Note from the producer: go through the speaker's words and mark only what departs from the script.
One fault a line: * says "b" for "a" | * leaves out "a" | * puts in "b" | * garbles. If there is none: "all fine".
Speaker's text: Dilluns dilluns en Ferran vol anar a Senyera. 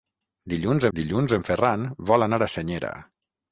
all fine